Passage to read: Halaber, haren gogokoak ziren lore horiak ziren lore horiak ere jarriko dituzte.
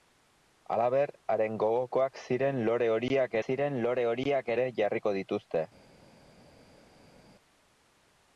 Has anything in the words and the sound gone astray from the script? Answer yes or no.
no